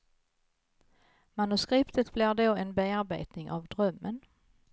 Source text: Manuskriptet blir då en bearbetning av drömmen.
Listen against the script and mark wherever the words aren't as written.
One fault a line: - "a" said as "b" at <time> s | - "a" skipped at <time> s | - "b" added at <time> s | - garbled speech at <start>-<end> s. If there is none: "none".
none